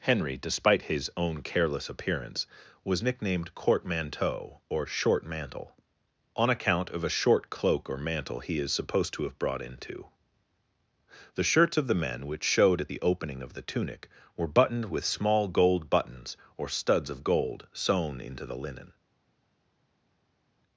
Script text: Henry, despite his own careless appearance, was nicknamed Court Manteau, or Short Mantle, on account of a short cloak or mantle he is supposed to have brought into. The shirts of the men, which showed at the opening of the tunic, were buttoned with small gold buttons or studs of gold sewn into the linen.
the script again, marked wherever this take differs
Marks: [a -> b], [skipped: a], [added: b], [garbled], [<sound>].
Henry, despite his own careless appearance, was nicknamed Court Manteau, or Short Mantle, on account of a short cloak or mantle he is supposed to have brought into. The shirts of the men, which showed at the opening of the tunic, were buttoned with small gold buttons or studs of gold sewn into the linen.